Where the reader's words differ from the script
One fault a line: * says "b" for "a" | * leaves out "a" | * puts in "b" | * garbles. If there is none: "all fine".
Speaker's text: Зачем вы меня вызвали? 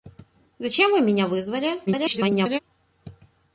* garbles